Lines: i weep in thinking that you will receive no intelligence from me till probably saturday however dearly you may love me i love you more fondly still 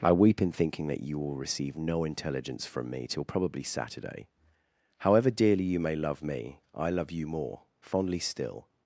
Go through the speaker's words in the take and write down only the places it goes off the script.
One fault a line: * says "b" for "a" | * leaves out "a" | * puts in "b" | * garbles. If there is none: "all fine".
all fine